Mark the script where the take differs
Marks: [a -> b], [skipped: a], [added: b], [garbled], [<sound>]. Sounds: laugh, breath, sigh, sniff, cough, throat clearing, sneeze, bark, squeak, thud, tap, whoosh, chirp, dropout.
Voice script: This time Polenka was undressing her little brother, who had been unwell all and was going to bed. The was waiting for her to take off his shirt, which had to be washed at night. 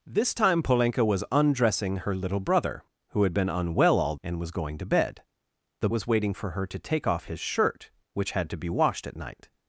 This time Polenka was undressing her little brother, who had been unwell all and was going to bed. The was waiting for her to take off his shirt, which had to be washed at night.